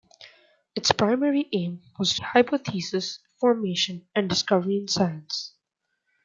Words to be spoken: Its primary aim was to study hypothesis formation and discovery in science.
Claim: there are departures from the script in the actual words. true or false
true